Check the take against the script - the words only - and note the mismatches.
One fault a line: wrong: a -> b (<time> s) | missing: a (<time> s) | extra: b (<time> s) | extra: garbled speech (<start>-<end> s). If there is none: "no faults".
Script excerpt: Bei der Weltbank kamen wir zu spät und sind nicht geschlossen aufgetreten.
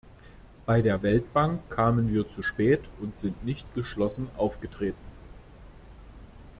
no faults